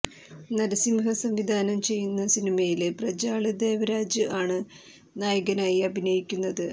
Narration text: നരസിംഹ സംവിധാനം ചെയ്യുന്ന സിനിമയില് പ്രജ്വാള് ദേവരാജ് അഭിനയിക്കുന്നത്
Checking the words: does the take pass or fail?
fail